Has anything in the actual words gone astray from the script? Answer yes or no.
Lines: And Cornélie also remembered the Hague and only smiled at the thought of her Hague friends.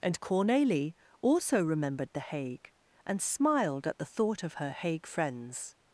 yes